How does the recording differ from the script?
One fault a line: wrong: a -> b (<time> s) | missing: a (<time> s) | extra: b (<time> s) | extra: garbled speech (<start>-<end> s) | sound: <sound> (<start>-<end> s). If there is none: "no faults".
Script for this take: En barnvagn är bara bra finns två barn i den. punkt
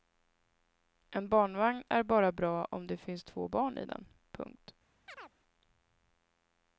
extra: om det (2.6 s)
sound: chirp (5.1-5.4 s)